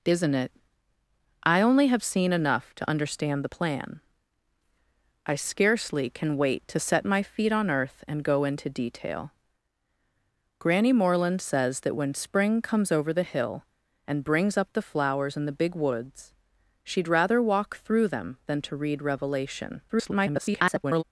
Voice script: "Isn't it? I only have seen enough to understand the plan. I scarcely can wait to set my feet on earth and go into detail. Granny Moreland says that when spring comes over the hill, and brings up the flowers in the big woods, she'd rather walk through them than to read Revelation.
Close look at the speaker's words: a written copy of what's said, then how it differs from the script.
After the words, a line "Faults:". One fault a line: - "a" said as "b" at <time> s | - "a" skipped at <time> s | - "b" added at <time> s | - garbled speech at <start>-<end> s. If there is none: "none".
"Isn't it? I only have seen enough to understand the plan. I scarcely can wait to set my feet on earth and go into detail. Granny Moreland says that when spring comes over the hill, and brings up the flowers in the big woods, she'd rather walk through them than to read Revelation. [garbled]
Faults:
- garbled speech at 19.9-21.0 s